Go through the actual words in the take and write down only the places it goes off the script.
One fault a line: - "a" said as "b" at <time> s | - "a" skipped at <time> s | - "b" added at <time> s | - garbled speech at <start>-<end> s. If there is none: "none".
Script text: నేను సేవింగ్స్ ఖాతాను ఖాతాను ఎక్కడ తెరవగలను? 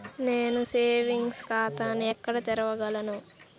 - "ఖాతాను" skipped at 2.0 s